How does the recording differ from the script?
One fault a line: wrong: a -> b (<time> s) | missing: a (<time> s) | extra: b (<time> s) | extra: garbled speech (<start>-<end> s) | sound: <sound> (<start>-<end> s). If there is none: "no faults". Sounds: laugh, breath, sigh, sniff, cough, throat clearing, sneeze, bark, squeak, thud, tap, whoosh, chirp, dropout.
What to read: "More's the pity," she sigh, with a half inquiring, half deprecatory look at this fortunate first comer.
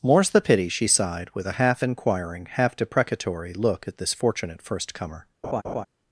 wrong: sigh -> sighed (0.9 s)
sound: laugh (5.4-5.9 s)